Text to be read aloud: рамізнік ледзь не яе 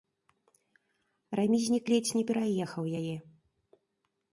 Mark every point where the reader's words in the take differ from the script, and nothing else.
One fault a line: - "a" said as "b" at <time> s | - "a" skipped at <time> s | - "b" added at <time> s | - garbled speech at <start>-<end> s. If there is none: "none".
- "пераехаў" added at 2.3 s